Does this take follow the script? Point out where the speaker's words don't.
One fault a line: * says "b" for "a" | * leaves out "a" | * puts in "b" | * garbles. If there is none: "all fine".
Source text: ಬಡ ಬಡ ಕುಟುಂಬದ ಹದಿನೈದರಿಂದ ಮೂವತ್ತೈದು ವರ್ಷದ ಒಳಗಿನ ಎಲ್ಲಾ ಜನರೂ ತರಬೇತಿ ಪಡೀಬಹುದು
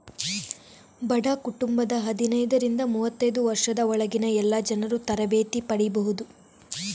* leaves out "ಬಡ"